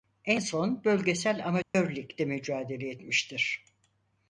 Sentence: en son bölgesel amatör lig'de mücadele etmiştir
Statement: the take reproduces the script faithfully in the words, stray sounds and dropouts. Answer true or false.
false